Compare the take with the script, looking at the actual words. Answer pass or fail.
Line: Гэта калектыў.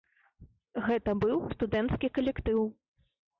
fail